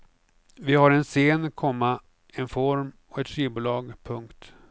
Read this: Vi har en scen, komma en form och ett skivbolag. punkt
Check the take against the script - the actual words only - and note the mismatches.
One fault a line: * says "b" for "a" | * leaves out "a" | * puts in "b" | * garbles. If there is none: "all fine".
all fine